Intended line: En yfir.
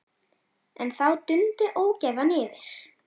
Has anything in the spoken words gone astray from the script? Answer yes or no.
yes